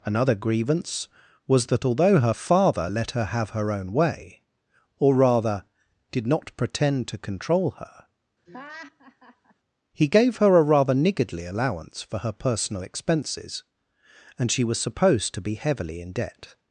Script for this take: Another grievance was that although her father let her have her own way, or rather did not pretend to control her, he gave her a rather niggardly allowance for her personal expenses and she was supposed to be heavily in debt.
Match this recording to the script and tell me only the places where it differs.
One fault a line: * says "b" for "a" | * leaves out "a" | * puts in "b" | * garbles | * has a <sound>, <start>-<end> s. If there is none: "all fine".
* has a laugh, 8.5-9.5 s